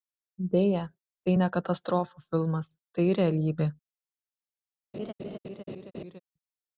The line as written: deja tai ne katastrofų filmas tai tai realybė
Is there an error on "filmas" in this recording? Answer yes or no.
no